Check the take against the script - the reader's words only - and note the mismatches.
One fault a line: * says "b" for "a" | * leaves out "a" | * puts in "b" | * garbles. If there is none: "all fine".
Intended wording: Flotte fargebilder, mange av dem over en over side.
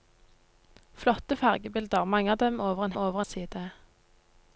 all fine